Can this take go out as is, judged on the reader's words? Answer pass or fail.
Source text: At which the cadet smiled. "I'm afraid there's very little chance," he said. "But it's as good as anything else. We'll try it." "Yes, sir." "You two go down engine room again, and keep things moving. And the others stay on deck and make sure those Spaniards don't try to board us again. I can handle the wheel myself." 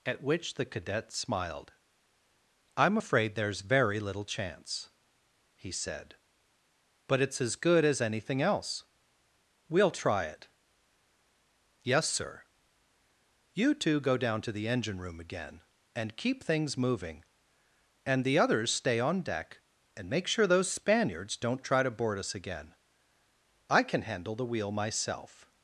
fail